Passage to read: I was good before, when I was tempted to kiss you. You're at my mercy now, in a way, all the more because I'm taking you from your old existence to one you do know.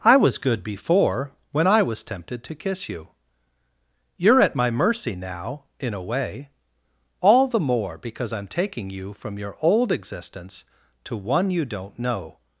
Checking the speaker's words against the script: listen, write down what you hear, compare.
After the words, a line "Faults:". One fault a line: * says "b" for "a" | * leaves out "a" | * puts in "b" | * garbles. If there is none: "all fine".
I was good before, when I was tempted to kiss you. You're at my mercy now, in a way, all the more because I'm taking you from your old existence to one you don't know.
Faults:
* says "don't" for "do"